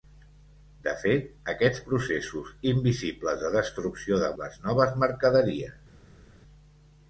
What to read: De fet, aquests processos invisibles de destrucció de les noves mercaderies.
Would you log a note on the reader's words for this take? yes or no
no